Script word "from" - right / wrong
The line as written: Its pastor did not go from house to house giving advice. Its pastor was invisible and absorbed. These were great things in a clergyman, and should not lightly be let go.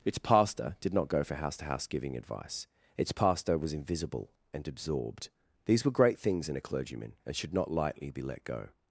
wrong